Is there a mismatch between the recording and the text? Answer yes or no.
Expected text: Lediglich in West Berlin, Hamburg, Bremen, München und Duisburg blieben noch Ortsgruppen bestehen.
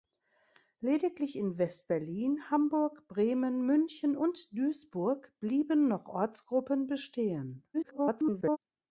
yes